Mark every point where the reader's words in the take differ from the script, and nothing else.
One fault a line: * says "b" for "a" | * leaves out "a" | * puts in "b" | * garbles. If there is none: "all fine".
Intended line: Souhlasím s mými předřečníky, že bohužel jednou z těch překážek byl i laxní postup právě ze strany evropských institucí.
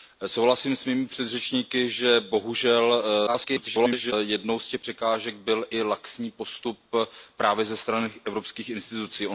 * garbles